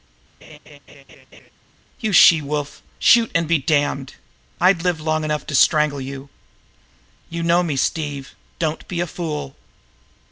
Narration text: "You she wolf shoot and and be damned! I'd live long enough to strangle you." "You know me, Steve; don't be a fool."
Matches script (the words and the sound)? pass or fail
fail